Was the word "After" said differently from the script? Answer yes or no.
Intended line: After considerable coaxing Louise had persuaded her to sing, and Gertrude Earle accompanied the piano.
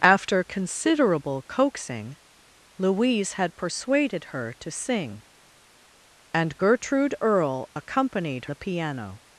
no